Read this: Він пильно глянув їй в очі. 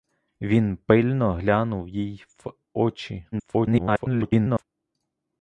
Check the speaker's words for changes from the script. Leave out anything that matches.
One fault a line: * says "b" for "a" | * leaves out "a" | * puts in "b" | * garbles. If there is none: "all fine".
* garbles